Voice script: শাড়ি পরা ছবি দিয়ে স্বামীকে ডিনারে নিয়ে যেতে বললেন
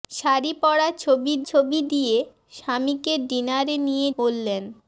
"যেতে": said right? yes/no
no